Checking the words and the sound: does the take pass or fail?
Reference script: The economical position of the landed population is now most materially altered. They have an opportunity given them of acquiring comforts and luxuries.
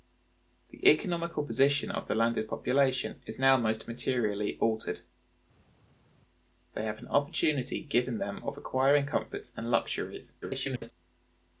fail